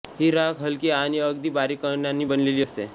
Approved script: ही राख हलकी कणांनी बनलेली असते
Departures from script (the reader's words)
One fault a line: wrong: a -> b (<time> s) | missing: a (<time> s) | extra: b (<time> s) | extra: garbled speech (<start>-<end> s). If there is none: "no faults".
extra: आणि अगदी बारीक (0.9 s)